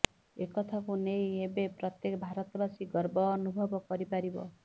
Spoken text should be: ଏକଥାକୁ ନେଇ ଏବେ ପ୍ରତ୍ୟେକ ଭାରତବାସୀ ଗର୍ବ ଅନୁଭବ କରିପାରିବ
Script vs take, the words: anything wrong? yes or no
no